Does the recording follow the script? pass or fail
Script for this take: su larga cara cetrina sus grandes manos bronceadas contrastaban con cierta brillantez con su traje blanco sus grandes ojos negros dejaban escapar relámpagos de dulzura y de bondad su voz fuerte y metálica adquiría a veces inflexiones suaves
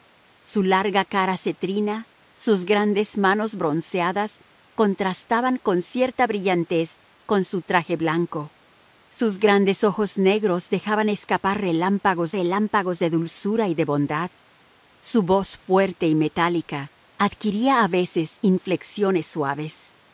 fail